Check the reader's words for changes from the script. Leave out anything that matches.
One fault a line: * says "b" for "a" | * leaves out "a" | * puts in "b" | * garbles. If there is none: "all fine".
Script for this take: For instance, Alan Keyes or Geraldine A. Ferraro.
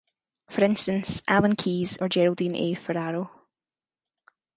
all fine